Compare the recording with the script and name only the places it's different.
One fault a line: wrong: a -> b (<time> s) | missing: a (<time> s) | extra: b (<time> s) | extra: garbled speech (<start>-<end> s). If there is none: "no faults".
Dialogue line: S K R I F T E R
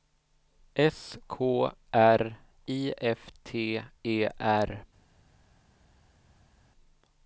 no faults